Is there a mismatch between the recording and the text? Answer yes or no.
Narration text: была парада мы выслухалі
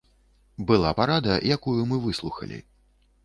yes